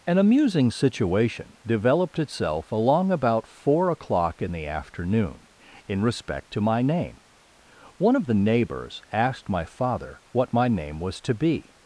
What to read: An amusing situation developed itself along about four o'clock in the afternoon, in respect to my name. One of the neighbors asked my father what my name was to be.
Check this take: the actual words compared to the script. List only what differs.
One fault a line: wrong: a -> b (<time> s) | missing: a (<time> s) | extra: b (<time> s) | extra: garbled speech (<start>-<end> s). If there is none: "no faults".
no faults